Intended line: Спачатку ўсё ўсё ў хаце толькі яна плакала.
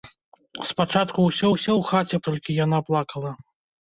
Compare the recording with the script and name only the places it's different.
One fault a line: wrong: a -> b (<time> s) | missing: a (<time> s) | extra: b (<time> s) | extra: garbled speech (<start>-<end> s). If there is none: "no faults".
no faults